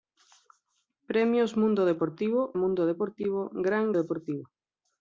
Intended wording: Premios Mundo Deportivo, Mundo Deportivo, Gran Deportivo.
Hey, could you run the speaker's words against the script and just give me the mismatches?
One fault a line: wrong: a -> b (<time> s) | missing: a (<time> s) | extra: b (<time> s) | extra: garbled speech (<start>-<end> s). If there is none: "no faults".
no faults